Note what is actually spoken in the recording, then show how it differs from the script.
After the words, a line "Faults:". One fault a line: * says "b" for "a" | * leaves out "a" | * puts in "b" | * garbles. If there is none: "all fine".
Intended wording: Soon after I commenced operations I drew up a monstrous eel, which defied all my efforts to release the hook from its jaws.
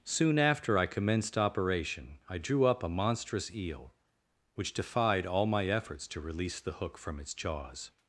Soon after I commenced operation I drew up a monstrous eel, which defied all my efforts to release the hook from its jaws.
Faults:
* says "operation" for "operations"